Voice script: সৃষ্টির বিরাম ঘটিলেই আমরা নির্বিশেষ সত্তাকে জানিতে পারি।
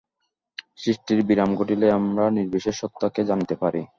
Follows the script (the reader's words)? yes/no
yes